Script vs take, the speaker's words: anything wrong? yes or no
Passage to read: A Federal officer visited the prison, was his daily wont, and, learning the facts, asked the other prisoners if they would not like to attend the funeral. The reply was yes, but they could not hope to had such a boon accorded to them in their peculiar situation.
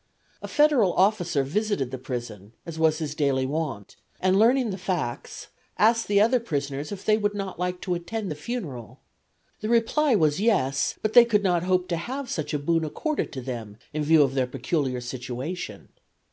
yes